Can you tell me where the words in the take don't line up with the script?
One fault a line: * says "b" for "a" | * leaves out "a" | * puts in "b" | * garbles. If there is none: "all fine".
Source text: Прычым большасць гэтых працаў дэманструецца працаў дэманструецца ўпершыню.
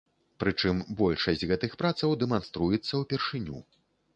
* leaves out "працаў дэманструецца"